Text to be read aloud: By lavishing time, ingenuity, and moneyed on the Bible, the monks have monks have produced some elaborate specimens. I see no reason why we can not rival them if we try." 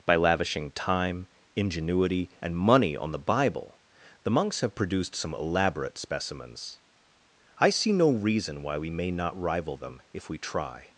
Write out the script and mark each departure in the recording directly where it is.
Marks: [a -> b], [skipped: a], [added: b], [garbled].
By lavishing time, ingenuity, and [moneyed -> money] on the Bible, the monks have [skipped: monks have] produced some elaborate specimens. I see no reason why we [can -> may] not rival them if we try."